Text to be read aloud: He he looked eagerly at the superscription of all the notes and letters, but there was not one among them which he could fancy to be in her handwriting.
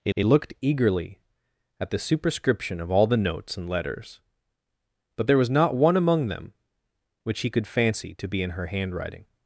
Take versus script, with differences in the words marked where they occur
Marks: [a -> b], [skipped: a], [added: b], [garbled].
He he looked eagerly at the superscription of all the notes and letters, but there was not one among them which he could fancy to be in her handwriting.